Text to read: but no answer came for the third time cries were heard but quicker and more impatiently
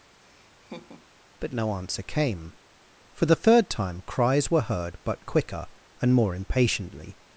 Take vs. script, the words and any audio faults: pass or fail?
fail